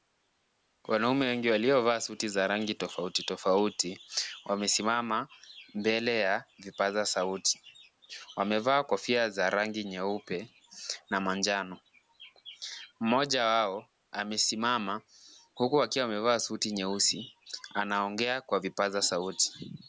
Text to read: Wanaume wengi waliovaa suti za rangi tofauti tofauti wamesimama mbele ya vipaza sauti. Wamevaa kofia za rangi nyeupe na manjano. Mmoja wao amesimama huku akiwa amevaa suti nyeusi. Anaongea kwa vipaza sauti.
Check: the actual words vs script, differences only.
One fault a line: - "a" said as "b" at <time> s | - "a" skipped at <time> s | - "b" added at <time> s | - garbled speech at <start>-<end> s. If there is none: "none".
none